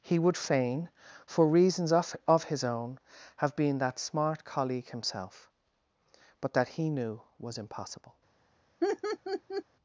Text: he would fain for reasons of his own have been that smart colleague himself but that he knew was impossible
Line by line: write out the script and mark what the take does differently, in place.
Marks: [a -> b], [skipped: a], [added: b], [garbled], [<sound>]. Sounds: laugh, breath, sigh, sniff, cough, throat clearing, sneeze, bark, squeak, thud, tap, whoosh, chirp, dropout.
he would fain for reasons of [added: of] his own have been that smart colleague himself but that he knew was impossible [laugh]